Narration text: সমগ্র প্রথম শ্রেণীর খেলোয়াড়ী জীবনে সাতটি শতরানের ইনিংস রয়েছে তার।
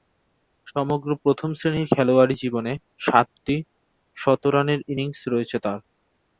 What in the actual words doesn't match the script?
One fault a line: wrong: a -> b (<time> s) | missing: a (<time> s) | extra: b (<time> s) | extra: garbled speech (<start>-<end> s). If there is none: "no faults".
no faults